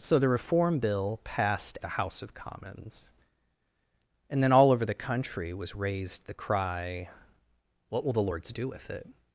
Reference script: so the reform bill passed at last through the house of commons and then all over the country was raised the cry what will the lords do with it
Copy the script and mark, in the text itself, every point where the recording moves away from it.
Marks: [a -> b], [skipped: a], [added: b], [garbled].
so the reform bill passed [skipped: at last through] the house of commons and then all over the country was raised the cry what will the lords do with it